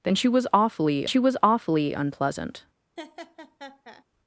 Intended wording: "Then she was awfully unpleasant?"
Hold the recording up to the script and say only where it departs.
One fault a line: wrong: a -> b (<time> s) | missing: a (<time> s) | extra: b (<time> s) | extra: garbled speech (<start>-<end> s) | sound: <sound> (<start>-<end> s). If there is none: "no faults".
extra: she was awfully (1.1 s)
sound: laugh (3.0-4.0 s)